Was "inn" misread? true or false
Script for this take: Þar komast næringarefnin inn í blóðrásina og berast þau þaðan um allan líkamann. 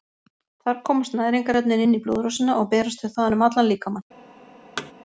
false